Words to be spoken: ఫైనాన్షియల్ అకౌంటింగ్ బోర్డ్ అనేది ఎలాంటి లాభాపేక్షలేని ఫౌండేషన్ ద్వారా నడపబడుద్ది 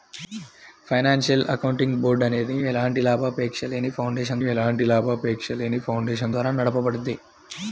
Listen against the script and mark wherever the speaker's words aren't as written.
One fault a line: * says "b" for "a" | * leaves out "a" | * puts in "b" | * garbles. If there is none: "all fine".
* puts in "ఎలాంటి లాభాపేక్షలేని ఫౌండేషన్"